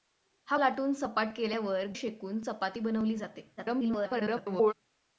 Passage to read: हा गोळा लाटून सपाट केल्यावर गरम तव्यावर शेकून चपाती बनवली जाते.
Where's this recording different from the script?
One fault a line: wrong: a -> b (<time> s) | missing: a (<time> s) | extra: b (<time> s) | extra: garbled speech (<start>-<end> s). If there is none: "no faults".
missing: गोळा (0.6 s)
missing: गरम तव्यावर (1.9 s)
extra: garbled speech (3.6-4.7 s)